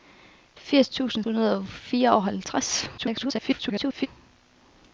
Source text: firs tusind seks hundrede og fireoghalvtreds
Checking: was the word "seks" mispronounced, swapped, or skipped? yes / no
yes